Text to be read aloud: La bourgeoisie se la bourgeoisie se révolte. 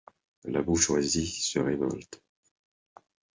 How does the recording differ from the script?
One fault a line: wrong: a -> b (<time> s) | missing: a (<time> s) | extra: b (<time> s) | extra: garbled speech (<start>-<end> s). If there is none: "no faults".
missing: la bourgeoisie se (1.6 s)